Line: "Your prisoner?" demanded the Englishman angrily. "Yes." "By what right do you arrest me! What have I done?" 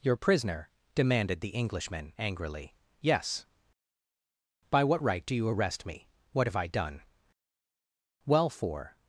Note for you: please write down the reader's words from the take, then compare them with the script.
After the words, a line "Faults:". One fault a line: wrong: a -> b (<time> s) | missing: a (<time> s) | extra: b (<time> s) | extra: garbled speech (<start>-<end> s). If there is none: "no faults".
"Your prisoner?" demanded the Englishman angrily. "Yes." "By what right do you arrest me! What have I done?" "Well, for
Faults:
extra: Well for (8.3 s)